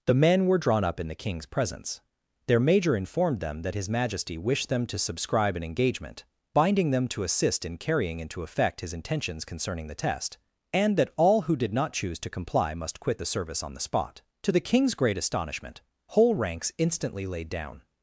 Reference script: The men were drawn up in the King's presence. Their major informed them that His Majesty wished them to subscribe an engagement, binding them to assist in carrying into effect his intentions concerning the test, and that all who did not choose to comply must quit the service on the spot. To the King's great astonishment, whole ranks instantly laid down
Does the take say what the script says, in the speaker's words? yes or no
yes